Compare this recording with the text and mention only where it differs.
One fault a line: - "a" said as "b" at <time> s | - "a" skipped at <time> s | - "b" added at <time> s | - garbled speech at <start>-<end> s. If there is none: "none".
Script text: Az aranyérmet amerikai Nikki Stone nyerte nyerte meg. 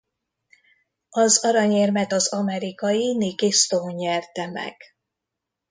- "az" added at 2.1 s
- "nyerte" skipped at 4.5 s